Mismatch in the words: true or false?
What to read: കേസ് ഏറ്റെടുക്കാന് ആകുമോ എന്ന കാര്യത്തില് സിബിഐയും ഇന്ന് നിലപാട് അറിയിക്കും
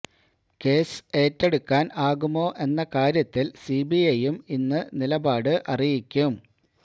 false